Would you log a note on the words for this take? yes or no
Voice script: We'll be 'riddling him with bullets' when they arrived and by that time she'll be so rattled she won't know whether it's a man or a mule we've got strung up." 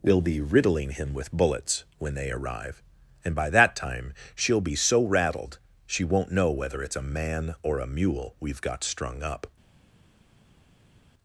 yes